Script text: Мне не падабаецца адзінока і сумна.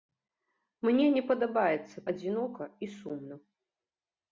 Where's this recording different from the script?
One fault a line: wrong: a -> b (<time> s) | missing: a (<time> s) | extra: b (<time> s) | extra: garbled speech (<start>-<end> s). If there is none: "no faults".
no faults